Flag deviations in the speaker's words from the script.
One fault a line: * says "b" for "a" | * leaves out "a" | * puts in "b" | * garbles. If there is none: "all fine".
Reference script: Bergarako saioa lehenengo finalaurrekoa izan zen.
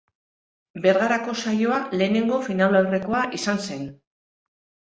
all fine